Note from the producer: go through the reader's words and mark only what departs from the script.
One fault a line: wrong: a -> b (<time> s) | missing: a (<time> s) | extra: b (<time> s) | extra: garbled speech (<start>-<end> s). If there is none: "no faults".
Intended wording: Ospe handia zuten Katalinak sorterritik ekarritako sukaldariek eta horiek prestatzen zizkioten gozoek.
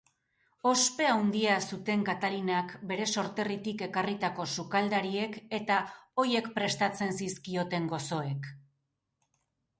extra: bere (2.9 s)